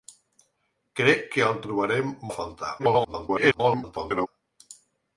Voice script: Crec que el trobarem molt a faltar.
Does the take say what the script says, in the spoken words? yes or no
no